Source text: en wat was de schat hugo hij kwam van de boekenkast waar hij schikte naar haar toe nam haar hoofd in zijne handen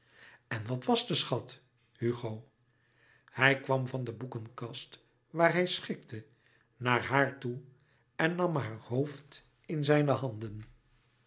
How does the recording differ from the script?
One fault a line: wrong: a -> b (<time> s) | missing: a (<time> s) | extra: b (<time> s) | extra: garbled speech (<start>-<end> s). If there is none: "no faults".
extra: en (8.2 s)